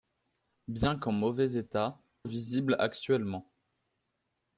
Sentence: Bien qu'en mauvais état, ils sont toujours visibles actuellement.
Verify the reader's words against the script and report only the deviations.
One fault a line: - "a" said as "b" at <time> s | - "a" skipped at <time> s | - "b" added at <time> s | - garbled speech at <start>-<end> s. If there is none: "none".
- "ils sont toujours" skipped at 2.0 s